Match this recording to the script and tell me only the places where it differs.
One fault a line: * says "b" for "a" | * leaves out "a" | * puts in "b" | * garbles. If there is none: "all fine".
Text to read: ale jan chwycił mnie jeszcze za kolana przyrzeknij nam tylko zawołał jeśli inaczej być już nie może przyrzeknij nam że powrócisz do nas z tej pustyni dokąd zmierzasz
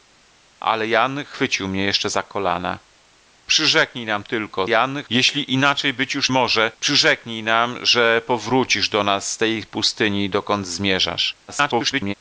* says "jan" for "zawołał"
* leaves out "nie"
* garbles